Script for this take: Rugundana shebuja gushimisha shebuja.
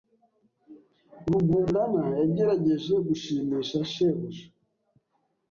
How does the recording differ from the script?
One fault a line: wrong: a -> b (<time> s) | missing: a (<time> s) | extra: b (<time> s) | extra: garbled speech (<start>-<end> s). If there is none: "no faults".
wrong: shebuja -> yagerageje (2.2 s)